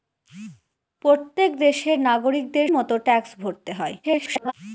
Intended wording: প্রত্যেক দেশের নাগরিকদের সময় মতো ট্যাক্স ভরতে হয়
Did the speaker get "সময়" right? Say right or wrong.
wrong